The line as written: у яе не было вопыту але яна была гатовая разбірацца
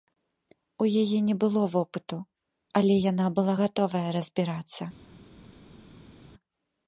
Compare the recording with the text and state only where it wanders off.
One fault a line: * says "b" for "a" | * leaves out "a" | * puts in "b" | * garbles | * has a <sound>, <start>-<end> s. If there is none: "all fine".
all fine